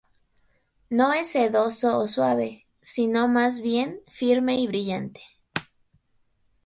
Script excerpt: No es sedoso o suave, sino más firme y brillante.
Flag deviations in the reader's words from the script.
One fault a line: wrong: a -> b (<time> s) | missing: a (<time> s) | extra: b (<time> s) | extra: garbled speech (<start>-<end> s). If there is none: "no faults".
extra: bien (3.6 s)